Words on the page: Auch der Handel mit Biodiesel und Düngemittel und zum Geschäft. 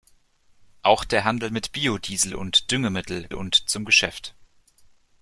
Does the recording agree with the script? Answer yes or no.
yes